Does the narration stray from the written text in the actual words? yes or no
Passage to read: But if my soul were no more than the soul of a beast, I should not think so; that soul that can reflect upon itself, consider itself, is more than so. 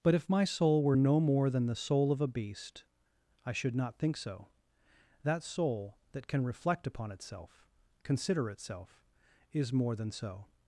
no